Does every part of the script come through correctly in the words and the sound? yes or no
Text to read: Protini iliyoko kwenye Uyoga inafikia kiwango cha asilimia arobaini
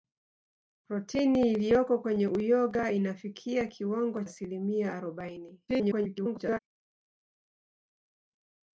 no